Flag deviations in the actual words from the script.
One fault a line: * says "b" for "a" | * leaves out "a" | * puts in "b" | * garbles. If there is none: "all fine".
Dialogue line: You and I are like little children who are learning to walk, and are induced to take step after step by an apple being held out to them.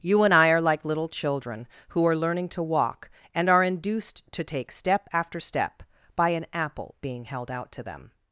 all fine